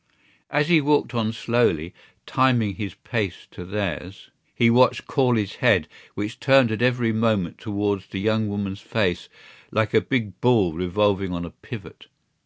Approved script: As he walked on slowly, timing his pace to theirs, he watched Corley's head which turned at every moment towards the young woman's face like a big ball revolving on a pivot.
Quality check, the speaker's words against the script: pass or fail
pass